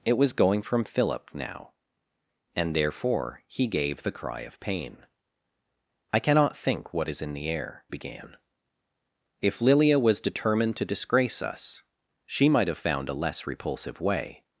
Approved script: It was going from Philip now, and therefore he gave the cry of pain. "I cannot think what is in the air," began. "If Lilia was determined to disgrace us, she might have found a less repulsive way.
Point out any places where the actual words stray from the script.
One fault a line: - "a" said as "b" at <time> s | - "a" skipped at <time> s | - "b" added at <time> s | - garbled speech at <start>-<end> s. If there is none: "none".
none